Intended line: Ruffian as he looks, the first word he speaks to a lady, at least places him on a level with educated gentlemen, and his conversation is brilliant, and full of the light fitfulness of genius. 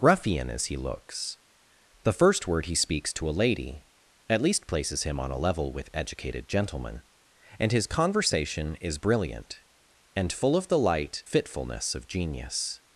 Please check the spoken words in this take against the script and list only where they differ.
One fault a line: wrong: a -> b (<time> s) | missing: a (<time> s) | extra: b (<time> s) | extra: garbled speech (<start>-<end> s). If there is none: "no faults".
no faults